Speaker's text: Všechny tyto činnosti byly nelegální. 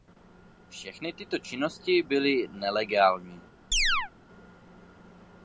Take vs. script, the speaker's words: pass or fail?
pass